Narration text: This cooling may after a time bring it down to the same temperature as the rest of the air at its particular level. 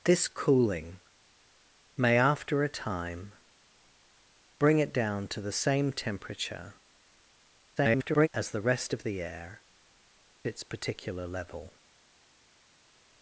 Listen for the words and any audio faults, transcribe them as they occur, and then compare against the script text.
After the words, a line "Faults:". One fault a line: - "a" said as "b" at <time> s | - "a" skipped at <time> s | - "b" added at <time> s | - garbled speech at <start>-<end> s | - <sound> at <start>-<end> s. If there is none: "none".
This cooling may after a time bring it down to the same temperature [garbled] as the rest of the air its particular level.
Faults:
- garbled speech at 7.8-8.3 s
- "at" skipped at 9.6 s